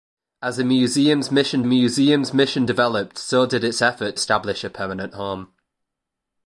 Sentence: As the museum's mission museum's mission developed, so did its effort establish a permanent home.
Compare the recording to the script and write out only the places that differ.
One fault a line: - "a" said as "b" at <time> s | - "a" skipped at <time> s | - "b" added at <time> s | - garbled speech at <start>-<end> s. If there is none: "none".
none